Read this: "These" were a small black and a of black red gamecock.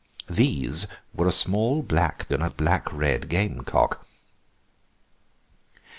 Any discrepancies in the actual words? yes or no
no